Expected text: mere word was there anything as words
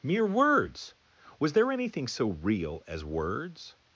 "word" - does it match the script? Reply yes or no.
no